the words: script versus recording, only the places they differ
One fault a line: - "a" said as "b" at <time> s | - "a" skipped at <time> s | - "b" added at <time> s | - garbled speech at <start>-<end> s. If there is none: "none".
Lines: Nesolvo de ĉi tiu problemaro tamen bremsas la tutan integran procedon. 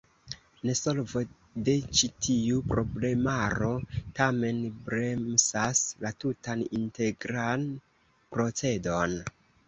none